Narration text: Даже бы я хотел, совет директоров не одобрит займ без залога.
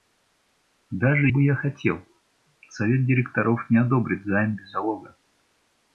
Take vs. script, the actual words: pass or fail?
pass